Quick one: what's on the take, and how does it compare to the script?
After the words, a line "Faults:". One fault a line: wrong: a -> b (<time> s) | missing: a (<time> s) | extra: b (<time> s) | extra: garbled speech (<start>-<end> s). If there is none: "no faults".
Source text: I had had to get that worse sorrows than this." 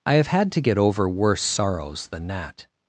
I have had to get over worse sorrows than that."
Faults:
wrong: had -> have (0.1 s)
wrong: that -> over (0.8 s)
wrong: this -> that (2.3 s)